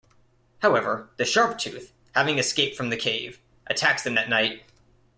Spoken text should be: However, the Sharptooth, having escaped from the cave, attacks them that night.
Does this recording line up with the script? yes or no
yes